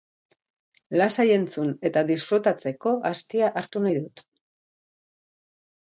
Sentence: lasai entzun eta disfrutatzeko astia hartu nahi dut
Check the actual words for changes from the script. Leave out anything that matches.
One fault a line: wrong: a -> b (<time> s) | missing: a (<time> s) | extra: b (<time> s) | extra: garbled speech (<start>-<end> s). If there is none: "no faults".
no faults